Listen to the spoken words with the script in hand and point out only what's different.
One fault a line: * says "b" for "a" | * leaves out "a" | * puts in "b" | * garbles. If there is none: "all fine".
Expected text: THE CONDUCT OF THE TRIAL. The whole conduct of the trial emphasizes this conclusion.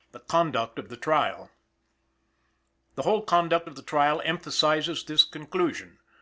all fine